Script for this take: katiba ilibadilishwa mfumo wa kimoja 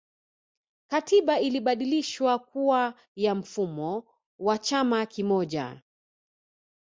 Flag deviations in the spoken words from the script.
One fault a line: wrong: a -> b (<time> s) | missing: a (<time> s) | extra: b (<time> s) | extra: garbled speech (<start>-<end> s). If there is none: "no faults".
extra: kuwa ya (2.4 s)
extra: chama (4.6 s)